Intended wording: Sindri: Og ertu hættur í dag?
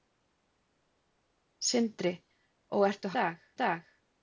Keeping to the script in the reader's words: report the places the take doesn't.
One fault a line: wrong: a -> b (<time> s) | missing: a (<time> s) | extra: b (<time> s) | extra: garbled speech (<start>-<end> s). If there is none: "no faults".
wrong: hættur -> dag (3.2 s)